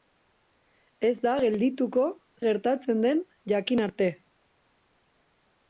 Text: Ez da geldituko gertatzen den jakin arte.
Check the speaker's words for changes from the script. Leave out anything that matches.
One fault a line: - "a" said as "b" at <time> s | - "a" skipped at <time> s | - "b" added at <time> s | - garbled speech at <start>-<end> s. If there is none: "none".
none